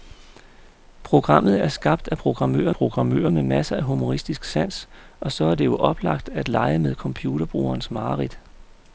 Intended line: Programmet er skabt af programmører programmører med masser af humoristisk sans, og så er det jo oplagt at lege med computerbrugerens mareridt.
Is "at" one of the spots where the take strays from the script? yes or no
no